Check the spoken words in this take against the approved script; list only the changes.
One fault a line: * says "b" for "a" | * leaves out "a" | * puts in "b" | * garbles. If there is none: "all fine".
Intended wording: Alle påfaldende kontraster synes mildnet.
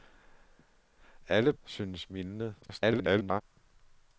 * leaves out "påfaldende kontraster"
* garbles